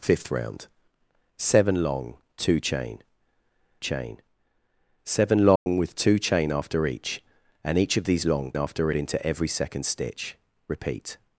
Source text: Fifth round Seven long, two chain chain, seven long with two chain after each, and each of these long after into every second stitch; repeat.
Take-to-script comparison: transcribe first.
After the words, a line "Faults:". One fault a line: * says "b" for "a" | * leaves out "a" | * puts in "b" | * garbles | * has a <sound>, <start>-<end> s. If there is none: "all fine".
Fifth round Seven long, two chain chain, seven long with two chain after each, and each of these long after into every second stitch; repeat.
Faults:
* has a dropout, 5.6-5.7 s